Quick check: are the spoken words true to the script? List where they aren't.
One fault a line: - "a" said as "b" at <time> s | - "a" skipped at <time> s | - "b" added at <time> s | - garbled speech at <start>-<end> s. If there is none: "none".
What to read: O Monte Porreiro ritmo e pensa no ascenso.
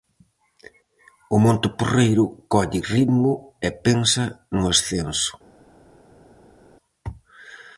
- "colle" added at 2.5 s